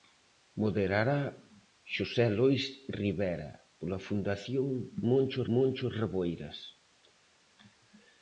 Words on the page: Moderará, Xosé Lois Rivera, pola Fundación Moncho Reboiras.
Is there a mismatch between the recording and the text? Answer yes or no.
yes